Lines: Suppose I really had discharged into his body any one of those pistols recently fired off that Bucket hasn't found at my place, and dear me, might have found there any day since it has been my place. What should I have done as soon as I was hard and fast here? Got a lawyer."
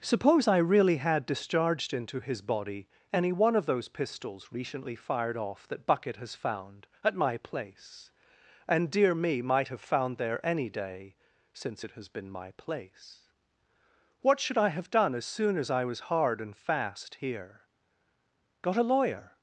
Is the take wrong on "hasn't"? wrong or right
wrong